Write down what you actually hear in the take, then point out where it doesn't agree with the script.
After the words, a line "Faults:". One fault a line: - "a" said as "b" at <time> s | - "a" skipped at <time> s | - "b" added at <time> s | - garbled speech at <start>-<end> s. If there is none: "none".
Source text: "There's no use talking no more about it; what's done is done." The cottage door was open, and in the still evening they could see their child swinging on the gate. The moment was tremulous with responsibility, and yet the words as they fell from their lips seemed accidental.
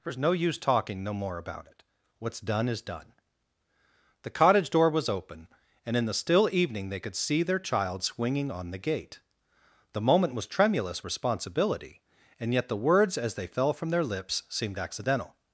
"There's no use talking no more about it; what's done is done." The cottage door was open, and in the still evening they could see their child swinging on the gate. The moment was tremulous responsibility, and yet the words as they fell from their lips seemed accidental.
Faults:
- "with" skipped at 11.1 s